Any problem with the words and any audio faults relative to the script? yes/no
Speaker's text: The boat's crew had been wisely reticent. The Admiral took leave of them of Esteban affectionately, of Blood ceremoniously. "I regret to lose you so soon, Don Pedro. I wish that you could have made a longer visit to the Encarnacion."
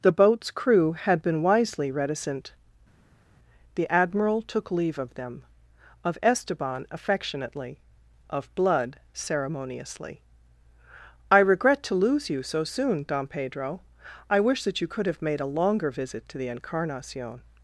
no